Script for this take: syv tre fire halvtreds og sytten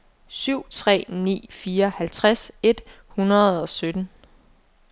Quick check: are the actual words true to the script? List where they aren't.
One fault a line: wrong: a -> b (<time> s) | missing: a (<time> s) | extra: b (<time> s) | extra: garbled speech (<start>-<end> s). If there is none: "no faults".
extra: ni (1.1 s)
extra: et hundrede (2.6 s)